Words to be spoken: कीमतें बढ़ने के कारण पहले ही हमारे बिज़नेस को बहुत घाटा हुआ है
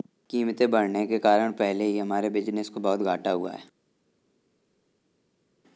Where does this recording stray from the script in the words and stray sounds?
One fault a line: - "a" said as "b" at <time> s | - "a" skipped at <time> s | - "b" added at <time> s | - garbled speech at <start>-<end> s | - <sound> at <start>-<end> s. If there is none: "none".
none